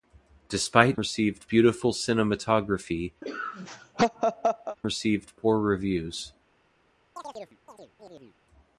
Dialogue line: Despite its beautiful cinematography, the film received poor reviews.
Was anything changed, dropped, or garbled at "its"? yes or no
yes